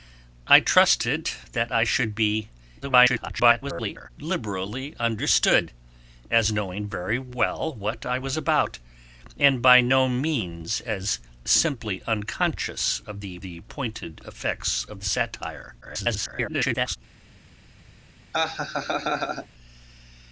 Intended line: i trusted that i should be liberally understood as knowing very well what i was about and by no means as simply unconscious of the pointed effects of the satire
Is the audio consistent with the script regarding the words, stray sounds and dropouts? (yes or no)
no